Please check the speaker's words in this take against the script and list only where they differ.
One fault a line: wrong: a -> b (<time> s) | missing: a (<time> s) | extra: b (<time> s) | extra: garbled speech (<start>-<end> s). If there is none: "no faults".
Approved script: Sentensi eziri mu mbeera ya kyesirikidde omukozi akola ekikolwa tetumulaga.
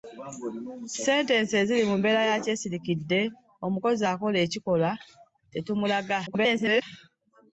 extra: garbled speech (6.3-6.8 s)